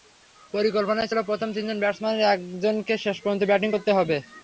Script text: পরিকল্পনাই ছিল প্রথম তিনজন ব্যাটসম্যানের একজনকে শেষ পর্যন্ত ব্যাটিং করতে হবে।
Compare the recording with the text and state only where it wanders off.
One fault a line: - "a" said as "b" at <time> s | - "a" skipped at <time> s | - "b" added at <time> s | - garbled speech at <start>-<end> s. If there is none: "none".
none